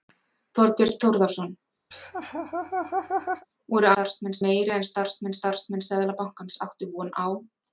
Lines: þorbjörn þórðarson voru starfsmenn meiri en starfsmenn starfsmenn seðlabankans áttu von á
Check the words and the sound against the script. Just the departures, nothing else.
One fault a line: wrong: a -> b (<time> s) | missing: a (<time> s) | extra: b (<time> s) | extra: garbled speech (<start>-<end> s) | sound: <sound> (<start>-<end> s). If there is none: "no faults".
sound: laugh (1.9-3.5 s)